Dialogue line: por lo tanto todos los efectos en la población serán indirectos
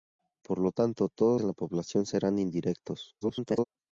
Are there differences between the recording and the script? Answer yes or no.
yes